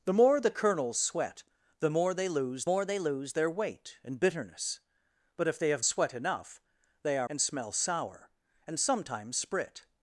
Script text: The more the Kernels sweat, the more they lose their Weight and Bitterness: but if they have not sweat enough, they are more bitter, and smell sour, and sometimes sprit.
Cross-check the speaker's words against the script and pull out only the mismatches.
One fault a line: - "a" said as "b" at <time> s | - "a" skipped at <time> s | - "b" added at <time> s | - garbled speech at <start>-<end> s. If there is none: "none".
- "more they lose" added at 2.6 s
- "not" skipped at 5.9 s
- "more bitter" skipped at 7.3 s